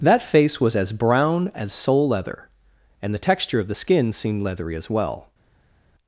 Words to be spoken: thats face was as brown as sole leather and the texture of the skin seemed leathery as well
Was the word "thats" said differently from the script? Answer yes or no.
yes